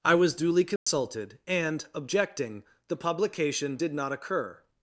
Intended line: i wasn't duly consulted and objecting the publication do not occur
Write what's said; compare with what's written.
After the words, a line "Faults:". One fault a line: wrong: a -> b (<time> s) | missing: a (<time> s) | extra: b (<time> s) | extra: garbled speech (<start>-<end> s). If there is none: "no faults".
i was duly consulted and objecting the publication did not occur
Faults:
wrong: wasn't -> was (0.1 s)
wrong: do -> did (3.7 s)